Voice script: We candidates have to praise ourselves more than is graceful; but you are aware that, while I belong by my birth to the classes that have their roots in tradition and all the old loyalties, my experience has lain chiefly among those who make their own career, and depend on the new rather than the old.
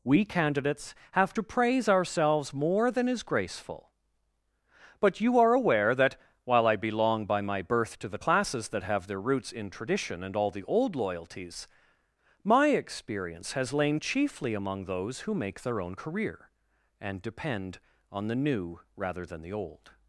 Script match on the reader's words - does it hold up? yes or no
yes